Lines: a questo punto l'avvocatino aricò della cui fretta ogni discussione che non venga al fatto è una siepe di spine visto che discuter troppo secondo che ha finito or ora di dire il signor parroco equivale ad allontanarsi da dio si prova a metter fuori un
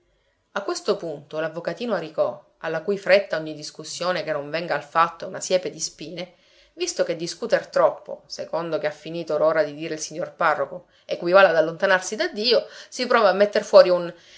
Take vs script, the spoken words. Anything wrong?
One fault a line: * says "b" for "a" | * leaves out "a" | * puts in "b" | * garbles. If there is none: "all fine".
* says "alla" for "della"